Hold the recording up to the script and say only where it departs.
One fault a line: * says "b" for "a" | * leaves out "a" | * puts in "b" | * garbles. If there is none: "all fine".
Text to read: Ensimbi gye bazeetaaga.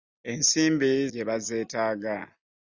all fine